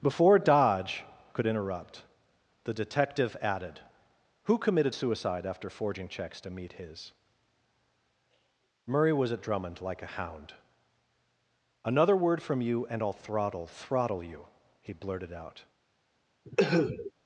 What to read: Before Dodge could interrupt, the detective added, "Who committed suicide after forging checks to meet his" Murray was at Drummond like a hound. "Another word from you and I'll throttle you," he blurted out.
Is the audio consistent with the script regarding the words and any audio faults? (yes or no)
no